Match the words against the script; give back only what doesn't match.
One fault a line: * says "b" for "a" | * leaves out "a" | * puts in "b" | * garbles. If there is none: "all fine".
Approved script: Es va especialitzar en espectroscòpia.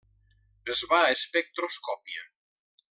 * leaves out "especialitzar en"